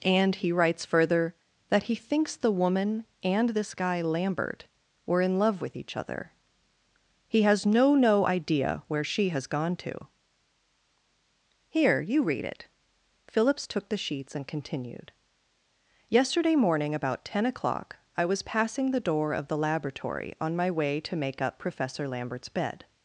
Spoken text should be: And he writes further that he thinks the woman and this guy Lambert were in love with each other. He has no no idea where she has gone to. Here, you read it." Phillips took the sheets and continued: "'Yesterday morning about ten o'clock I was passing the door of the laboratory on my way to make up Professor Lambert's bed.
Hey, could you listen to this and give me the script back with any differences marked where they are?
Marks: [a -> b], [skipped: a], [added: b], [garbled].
And he writes further that he thinks the woman and this guy Lambert were in love with each other. He has no no idea where she has gone to. Here, you read it." Phillips took the sheets and continued: "'Yesterday morning about ten o'clock I was passing the door of the laboratory on my way to make up Professor Lambert's bed.